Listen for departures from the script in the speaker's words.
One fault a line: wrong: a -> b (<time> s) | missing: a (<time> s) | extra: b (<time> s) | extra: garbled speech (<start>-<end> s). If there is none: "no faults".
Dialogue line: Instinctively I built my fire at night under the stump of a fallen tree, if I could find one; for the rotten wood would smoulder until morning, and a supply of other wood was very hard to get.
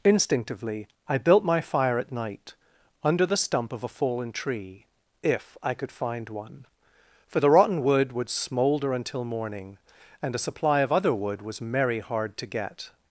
wrong: very -> merry (11.6 s)